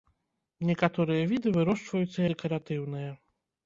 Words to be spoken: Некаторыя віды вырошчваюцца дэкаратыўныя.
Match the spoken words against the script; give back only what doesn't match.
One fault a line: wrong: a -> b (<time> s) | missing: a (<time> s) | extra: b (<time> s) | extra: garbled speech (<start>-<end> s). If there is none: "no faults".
no faults